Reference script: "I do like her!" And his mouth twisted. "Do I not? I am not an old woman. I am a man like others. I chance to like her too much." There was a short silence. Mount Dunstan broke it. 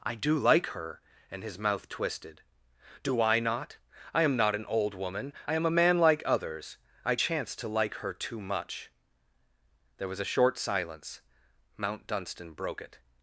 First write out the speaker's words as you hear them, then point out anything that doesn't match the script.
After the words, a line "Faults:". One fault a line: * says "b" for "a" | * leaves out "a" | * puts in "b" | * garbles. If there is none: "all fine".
"I do like her!" And his mouth twisted. "Do I not? I am not an old woman. I am a man like others. I chance to like her too much." There was a short silence. Mount Dunstan broke it.
Faults:
all fine